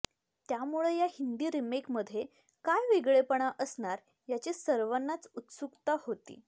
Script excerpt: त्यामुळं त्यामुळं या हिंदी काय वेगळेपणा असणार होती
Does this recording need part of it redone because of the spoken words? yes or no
yes